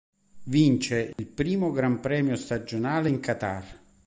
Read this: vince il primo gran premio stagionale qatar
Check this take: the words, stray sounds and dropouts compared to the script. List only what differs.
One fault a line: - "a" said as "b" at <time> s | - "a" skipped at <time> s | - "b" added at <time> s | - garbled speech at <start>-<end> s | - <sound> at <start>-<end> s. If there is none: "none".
- dropout at 1.1-1.2 s
- "in" added at 3.1 s